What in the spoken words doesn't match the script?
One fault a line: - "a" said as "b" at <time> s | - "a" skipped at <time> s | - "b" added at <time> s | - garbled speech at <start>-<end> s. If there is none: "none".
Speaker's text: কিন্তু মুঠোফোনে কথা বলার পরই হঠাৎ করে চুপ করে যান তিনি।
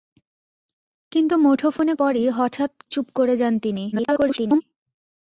- "কথা বলার" skipped at 1.9 s
- "করে" skipped at 2.7 s
- garbled speech at 3.9-4.6 s